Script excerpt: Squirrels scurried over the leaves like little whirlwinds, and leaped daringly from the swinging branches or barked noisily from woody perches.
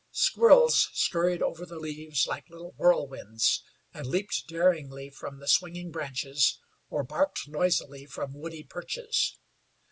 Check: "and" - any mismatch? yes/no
no